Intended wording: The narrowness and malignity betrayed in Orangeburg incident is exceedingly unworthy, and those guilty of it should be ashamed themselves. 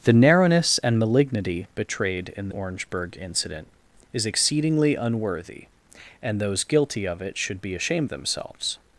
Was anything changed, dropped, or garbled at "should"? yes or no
no